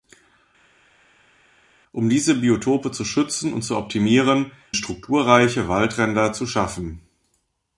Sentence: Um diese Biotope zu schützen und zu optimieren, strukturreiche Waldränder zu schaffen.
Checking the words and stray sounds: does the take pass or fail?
pass